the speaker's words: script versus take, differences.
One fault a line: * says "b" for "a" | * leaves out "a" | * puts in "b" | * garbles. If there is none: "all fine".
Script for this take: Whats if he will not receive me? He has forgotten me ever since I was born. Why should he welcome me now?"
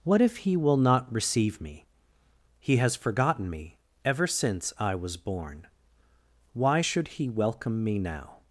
* says "What" for "Whats"